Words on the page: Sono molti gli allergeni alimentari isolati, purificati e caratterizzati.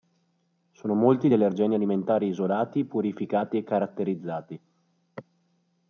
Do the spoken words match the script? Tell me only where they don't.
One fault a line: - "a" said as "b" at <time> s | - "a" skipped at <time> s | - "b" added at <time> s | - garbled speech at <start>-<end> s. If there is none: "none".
none